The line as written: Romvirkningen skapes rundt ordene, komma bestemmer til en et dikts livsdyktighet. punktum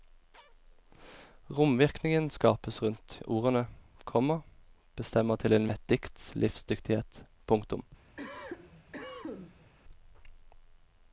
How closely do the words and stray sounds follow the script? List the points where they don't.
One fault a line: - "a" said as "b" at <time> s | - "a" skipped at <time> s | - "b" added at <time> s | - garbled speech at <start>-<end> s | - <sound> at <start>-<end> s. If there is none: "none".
- cough at 8.2-9.7 s